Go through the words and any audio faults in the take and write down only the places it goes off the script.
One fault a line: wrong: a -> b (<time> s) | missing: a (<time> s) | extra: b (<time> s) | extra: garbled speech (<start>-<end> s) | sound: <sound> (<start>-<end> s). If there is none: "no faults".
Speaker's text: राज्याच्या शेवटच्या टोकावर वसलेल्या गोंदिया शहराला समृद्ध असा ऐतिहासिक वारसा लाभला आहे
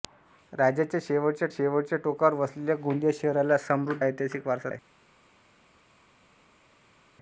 extra: शेवटच्या (1.5 s)
missing: असा (4.0 s)
missing: लाभला (4.7 s)